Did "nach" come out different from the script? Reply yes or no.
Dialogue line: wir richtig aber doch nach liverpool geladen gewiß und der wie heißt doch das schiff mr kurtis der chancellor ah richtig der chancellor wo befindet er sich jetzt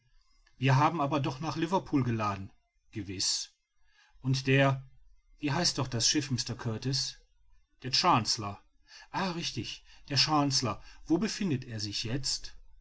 no